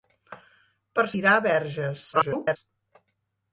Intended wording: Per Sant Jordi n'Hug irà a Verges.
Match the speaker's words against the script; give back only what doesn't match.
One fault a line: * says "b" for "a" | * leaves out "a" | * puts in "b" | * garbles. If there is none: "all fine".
* leaves out "Sant Jordi n'Hug"
* garbles